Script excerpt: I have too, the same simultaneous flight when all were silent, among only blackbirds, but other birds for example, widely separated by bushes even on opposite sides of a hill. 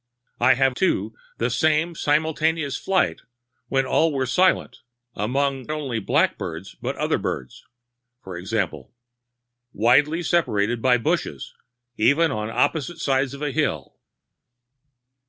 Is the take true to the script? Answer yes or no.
yes